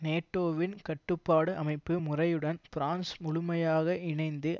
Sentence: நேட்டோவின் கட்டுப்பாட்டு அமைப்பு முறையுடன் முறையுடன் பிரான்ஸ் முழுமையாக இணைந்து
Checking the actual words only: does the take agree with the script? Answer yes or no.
no